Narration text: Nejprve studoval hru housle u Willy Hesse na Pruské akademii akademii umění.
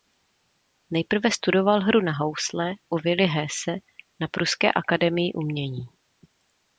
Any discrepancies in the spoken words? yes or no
yes